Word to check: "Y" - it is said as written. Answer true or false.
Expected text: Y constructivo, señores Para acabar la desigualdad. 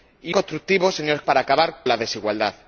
true